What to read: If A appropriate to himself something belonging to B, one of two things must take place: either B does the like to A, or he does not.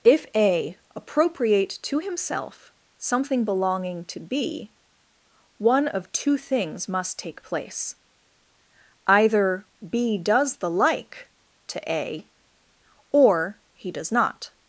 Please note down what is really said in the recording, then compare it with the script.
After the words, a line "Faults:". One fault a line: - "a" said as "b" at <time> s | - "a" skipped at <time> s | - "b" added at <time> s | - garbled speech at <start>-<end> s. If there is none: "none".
If A appropriate to himself something belonging to B, one of two things must take place: either B does the like to A, or he does not.
Faults:
none